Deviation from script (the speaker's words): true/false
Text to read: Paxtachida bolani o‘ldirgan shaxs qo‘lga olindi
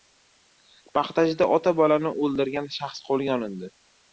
true